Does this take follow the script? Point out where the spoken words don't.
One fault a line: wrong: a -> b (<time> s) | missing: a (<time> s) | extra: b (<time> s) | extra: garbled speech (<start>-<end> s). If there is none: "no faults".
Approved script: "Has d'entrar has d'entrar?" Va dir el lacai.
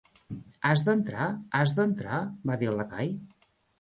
no faults